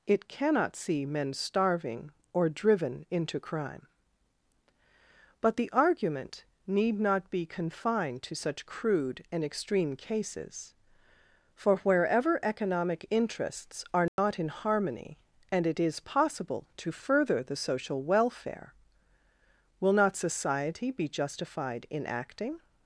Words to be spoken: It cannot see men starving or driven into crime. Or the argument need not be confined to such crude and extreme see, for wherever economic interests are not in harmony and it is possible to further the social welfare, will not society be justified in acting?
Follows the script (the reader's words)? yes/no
no